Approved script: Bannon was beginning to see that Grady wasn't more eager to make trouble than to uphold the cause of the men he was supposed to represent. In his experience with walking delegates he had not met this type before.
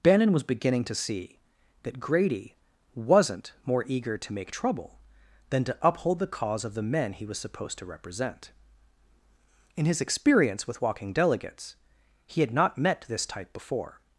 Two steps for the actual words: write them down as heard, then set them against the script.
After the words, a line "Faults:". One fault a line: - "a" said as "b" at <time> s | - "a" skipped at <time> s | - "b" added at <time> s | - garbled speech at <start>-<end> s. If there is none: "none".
Bannon was beginning to see that Grady wasn't more eager to make trouble than to uphold the cause of the men he was supposed to represent. In his experience with walking delegates he had not met this type before.
Faults:
none